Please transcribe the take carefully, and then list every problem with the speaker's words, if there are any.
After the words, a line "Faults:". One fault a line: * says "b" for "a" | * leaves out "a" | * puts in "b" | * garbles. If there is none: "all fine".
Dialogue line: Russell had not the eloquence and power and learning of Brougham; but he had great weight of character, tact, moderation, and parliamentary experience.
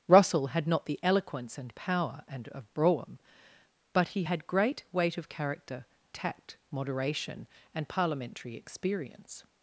Russell had not the eloquence and power and of Brougham; but he had great weight of character, tact, moderation, and parliamentary experience.
Faults:
* leaves out "learning"